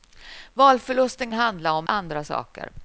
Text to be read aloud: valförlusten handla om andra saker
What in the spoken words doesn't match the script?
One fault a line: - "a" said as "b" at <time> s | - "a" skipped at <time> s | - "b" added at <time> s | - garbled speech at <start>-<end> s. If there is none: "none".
none